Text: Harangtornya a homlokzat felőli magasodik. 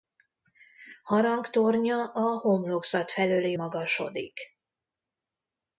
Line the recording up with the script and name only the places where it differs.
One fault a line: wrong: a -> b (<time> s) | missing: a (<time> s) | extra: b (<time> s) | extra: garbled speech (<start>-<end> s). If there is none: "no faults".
no faults